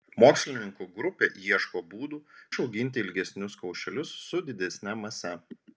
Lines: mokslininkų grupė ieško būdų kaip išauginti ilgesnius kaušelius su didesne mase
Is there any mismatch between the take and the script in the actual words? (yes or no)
yes